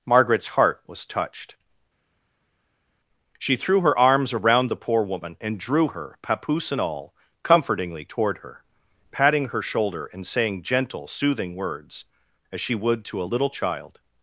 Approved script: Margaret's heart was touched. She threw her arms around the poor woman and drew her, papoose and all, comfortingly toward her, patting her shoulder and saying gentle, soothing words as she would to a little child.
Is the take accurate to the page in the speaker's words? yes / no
yes